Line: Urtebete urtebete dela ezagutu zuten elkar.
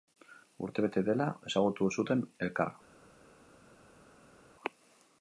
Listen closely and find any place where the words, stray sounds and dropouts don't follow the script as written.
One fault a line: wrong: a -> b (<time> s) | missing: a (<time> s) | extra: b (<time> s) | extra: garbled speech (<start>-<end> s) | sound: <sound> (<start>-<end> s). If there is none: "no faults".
missing: urtebete (1.0 s)